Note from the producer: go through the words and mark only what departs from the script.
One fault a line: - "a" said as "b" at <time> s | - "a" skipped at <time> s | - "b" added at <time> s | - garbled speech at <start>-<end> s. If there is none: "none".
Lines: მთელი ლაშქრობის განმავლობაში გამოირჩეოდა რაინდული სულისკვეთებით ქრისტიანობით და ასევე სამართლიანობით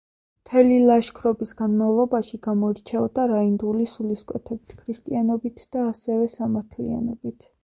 none